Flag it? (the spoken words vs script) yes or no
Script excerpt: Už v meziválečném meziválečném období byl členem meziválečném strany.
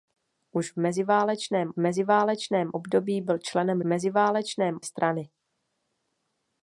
no